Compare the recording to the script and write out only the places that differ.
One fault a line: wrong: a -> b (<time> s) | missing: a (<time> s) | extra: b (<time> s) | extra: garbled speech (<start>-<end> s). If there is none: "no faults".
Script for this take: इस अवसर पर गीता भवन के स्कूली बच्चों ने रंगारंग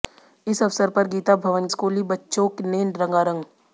missing: के (1.7 s)